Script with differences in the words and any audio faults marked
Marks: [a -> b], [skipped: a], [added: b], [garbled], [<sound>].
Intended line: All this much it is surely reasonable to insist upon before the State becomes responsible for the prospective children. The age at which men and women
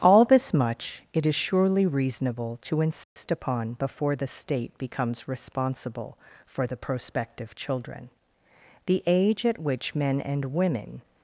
All this much it is surely reasonable to insist [dropout] upon before the State becomes responsible for the prospective children. The age at which men and women